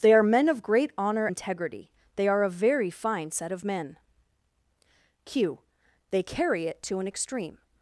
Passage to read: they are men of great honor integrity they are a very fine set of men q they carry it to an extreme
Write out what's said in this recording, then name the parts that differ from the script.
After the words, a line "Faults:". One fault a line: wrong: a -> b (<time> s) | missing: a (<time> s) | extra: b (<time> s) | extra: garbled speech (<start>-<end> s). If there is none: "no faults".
they are men of great honor integrity they are a very fine set of men q they carry it to an extreme
Faults:
no faults